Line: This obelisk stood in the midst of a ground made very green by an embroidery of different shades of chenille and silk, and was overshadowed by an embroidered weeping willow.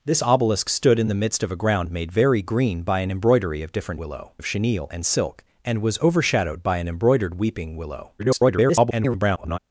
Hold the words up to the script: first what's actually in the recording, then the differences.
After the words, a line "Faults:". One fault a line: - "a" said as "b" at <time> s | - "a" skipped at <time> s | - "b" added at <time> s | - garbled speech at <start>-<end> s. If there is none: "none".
This obelisk stood in the midst of a ground made very green by an embroidery of different willow of chenille and silk, and was overshadowed by an embroidered weeping willow. [garbled]
Faults:
- "shades" said as "willow" at 3.9 s
- garbled speech at 8.2-9.6 s